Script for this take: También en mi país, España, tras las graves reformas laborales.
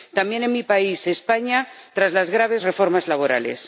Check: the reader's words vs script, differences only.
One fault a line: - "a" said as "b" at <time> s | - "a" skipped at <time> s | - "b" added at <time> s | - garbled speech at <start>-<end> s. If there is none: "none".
none